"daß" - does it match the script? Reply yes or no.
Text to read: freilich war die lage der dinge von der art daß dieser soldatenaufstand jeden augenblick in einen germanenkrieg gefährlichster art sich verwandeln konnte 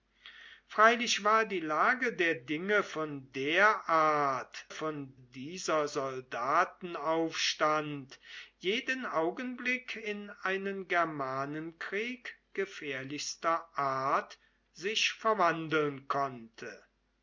no